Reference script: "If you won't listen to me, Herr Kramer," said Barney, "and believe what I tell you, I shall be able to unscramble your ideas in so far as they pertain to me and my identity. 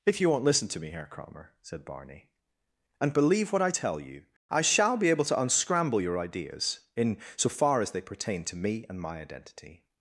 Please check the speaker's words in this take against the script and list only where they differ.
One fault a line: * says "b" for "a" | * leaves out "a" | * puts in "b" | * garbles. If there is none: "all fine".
all fine